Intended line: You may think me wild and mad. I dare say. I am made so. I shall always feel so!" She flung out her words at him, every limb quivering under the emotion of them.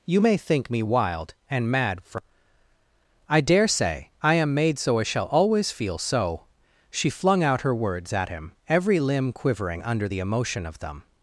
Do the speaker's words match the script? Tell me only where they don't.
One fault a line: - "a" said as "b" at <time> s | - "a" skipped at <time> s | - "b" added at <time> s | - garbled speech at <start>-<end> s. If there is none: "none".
- "for" added at 2.0 s